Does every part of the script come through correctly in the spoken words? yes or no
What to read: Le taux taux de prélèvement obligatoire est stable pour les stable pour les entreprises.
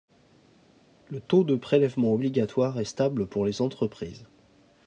no